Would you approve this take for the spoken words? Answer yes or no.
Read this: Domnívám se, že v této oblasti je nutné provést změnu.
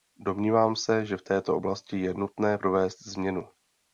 yes